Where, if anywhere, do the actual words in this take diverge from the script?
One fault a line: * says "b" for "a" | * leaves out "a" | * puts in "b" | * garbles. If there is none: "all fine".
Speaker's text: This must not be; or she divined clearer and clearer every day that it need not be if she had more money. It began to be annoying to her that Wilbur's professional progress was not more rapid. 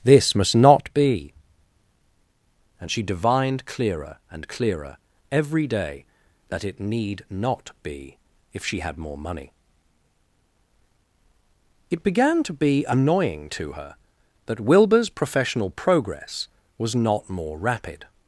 * says "and" for "or"